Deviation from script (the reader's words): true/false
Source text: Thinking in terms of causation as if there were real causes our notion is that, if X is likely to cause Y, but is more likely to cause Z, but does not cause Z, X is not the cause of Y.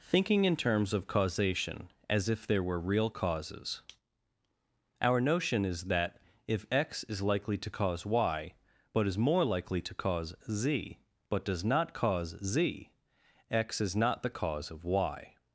false